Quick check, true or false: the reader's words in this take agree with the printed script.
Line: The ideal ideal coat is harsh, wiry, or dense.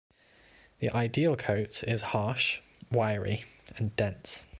false